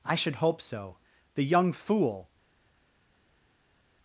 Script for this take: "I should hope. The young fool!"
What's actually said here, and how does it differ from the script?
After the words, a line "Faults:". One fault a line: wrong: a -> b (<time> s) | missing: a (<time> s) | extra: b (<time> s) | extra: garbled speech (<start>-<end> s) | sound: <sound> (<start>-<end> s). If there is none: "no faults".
"I should hope so. The young fool!"
Faults:
extra: so (0.6 s)